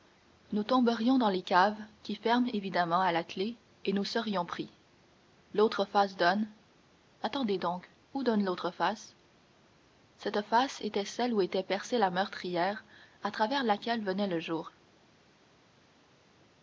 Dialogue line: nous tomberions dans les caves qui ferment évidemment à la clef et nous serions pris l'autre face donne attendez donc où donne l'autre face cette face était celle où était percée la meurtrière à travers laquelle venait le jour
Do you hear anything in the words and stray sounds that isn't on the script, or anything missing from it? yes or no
no